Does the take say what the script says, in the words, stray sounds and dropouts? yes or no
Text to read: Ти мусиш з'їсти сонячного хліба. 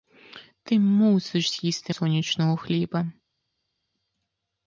yes